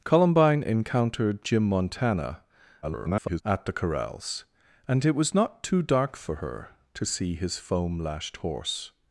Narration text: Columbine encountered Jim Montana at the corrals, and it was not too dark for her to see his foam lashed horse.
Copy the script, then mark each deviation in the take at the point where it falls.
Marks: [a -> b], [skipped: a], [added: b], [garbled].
Columbine encountered Jim Montana [garbled] at the corrals, and it was not too dark for her to see his foam lashed horse.